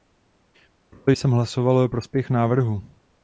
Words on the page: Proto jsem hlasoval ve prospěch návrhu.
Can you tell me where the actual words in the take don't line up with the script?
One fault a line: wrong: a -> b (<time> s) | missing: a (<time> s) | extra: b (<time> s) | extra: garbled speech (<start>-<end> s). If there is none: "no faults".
no faults